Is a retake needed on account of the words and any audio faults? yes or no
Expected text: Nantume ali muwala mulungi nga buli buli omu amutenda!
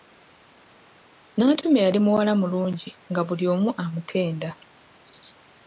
yes